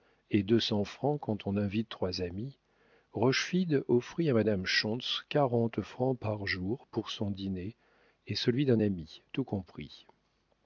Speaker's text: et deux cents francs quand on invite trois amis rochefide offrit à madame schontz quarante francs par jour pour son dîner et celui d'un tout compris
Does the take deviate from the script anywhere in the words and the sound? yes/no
yes